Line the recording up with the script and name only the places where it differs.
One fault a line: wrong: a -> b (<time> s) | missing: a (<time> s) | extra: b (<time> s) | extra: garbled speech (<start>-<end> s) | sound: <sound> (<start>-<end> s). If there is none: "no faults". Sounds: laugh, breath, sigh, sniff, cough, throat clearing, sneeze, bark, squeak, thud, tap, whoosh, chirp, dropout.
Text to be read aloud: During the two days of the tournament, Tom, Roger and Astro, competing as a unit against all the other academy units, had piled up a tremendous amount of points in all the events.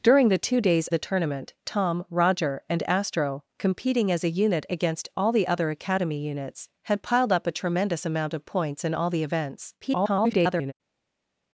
missing: of (0.9 s)
extra: garbled speech (9.8-10.7 s)